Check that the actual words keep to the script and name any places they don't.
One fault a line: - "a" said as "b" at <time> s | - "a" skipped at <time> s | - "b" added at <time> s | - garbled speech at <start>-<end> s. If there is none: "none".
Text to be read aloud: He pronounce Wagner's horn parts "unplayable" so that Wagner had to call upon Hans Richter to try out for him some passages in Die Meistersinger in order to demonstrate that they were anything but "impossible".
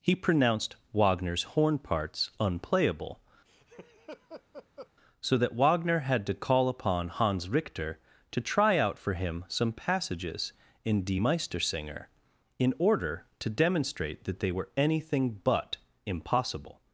- "pronounce" said as "pronounced" at 0.1 s